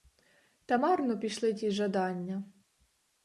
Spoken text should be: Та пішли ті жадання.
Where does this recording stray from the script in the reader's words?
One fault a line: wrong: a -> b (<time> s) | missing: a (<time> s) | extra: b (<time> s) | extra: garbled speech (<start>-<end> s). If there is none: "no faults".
extra: марно (0.7 s)